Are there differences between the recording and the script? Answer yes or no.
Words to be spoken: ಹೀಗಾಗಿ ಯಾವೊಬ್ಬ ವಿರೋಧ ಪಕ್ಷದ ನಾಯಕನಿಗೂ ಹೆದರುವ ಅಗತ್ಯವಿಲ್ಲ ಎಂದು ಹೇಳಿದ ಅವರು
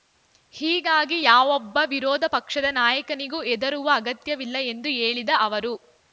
no